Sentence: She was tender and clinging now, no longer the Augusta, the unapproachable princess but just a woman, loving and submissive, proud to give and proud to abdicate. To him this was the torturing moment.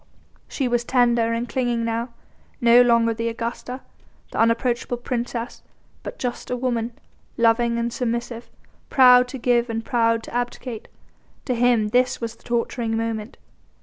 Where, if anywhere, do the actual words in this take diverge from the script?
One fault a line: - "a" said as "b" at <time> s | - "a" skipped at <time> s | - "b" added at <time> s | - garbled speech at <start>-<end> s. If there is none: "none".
none